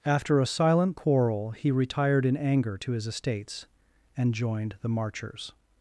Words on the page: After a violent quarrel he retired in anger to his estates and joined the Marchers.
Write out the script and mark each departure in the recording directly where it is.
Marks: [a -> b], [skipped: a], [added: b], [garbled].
After a [violent -> silent] quarrel he retired in anger to his estates and joined the Marchers.